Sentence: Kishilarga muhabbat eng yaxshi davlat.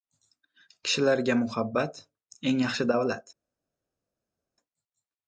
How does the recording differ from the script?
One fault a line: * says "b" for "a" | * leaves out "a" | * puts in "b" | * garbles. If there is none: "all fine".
all fine